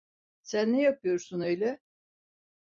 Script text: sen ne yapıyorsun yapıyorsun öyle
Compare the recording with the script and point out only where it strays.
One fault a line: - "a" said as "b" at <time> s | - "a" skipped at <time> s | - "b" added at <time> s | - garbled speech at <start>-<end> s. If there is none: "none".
- "yapıyorsun" skipped at 1.4 s